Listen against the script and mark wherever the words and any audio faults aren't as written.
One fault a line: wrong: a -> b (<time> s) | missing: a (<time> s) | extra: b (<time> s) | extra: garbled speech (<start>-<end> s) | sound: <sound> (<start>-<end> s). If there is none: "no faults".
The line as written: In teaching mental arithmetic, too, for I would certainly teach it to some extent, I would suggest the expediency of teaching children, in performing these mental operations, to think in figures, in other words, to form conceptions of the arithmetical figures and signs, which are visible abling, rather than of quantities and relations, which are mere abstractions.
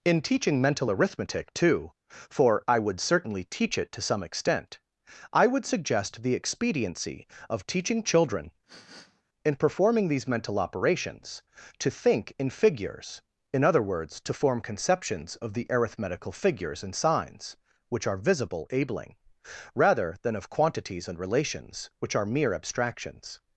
sound: sniff (8.7-9.2 s)